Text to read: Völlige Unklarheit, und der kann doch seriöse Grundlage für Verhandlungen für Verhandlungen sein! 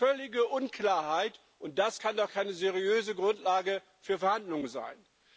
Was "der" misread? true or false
true